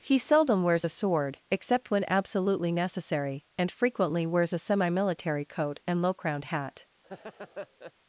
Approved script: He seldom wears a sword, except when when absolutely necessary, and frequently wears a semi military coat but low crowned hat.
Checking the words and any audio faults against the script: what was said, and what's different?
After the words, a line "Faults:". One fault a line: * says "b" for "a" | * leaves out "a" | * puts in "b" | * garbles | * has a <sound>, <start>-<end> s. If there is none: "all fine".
He seldom wears a sword, except when absolutely necessary, and frequently wears a semi military coat and low crowned hat.
Faults:
* leaves out "when"
* says "and" for "but"
* has a laugh, 7.0-7.9 s